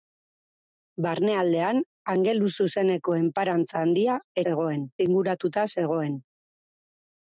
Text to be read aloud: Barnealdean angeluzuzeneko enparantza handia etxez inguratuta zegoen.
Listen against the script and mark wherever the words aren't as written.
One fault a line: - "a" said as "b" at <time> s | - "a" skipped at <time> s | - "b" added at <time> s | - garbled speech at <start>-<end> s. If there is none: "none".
- "etxez" said as "zegoen" at 4.5 s